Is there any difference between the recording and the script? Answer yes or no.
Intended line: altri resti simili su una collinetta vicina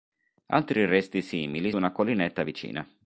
yes